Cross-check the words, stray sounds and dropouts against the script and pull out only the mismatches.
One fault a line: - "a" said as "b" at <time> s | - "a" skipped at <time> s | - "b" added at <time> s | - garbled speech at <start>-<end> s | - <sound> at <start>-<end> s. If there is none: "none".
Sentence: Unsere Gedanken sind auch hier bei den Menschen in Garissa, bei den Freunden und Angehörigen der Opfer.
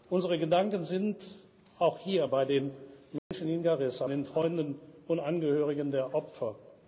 - dropout at 3.2-3.3 s
- "bei" skipped at 4.1 s